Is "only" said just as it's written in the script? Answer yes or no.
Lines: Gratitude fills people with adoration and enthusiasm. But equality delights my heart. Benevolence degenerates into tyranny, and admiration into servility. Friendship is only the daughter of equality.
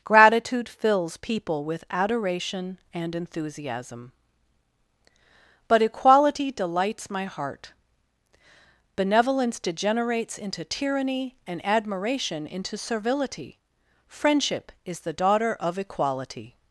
no